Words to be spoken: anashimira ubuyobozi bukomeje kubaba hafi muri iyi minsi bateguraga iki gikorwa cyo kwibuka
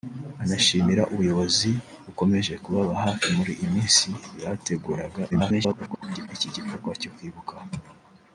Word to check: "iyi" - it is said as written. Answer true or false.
true